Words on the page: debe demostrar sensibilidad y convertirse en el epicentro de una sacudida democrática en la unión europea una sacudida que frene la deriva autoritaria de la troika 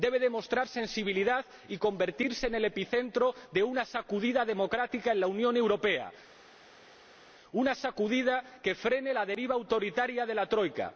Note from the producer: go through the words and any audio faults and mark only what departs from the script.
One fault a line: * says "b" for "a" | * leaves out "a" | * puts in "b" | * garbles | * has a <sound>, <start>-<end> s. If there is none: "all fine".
all fine